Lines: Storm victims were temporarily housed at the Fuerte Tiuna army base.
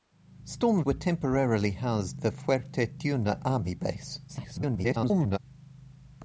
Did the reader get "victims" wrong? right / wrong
wrong